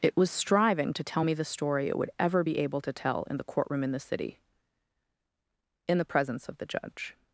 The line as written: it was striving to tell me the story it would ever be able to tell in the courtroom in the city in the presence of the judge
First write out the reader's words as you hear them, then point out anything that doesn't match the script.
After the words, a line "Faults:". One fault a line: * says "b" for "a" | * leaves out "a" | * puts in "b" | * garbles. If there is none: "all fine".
it was striving to tell me the story it would ever be able to tell in the courtroom in the city in the presence of the judge
Faults:
all fine